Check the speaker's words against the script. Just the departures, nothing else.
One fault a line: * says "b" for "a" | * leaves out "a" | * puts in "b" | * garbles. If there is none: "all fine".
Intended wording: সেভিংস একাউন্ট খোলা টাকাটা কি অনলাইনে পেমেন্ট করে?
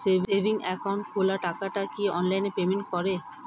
all fine